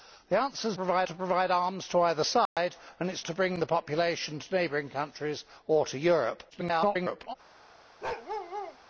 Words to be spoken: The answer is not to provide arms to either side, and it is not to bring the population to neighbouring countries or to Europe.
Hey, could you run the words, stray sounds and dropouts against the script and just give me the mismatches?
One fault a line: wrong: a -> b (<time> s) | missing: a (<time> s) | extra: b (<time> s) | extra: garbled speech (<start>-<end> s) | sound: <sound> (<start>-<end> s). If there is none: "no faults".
wrong: not -> provide (0.7 s)
sound: dropout (2.5-2.6 s)
missing: not (3.2 s)
extra: garbled speech (6.5-7.3 s)
sound: bark (8.0-8.8 s)